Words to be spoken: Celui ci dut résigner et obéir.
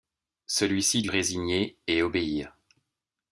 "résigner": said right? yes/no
yes